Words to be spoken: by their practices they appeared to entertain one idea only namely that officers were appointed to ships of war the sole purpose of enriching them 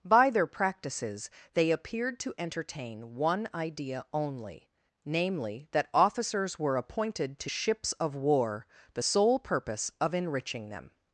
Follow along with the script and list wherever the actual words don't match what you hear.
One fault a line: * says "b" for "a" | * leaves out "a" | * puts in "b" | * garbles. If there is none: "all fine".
all fine